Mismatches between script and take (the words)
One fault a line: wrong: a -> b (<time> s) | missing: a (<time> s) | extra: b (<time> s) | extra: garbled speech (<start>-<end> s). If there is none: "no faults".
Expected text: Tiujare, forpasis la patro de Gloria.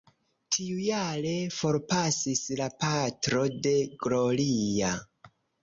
no faults